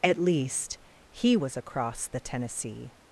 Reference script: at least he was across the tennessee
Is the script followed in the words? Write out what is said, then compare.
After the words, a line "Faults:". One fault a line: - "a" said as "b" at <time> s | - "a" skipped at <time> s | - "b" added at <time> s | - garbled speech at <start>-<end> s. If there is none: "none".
at least he was across the tennessee
Faults:
none